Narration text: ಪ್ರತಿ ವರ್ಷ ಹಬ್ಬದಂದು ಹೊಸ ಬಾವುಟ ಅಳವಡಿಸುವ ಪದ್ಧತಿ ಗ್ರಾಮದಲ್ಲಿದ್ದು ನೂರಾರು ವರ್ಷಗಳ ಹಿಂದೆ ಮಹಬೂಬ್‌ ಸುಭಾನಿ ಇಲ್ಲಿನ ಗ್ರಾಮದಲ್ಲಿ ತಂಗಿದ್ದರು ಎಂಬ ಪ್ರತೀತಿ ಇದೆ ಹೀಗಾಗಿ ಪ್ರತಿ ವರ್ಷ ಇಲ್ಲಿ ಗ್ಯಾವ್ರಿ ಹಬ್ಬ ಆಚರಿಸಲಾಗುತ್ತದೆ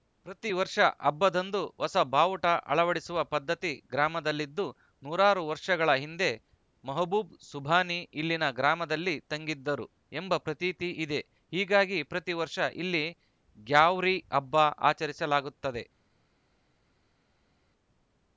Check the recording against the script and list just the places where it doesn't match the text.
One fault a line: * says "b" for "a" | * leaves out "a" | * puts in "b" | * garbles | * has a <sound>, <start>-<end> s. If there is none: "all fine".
all fine